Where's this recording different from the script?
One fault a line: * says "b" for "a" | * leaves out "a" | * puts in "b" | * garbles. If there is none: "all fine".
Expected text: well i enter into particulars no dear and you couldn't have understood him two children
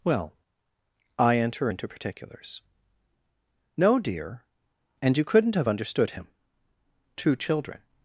all fine